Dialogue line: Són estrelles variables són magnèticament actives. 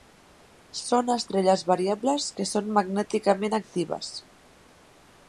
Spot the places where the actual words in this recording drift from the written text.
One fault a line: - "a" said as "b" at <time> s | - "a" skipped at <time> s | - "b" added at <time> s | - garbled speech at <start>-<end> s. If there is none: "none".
- "que" added at 2.4 s